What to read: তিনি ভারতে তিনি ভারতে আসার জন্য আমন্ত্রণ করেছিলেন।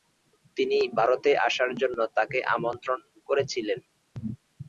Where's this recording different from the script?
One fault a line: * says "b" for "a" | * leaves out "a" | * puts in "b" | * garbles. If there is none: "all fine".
* leaves out "তিনি ভারতে"
* puts in "তাকে"